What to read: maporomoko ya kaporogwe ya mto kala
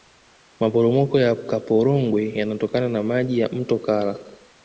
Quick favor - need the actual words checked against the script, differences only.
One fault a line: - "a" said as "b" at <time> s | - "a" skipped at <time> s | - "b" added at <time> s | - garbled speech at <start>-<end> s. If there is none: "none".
- "yanatokana na maji" added at 2.3 s